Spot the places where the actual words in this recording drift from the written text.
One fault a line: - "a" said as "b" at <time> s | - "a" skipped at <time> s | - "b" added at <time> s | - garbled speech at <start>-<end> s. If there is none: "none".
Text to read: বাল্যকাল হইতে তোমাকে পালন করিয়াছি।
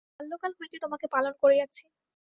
none